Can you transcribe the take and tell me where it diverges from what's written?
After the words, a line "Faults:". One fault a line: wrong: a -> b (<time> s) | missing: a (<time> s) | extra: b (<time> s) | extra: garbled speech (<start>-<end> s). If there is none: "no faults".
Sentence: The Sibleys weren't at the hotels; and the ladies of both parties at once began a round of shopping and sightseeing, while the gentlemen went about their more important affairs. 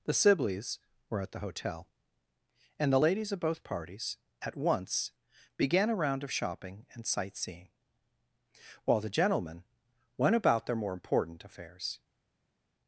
The Sibleys were at the hotel; and the ladies of both parties at once began a round of shopping and sightseeing, while the gentlemen went about their more important affairs.
Faults:
wrong: weren't -> were (1.1 s)
wrong: hotels -> hotel (1.4 s)